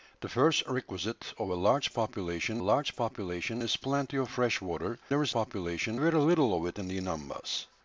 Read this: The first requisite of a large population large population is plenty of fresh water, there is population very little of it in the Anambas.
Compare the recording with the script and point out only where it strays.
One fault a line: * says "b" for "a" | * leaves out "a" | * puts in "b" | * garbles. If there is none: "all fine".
all fine